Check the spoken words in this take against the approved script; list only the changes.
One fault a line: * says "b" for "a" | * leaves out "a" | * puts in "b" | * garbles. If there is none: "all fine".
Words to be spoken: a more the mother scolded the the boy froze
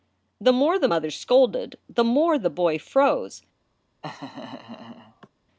* says "the" for "a"
* puts in "more"